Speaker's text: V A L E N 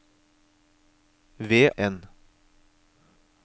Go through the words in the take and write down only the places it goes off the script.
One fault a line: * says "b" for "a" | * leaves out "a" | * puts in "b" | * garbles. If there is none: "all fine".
* leaves out "A L E"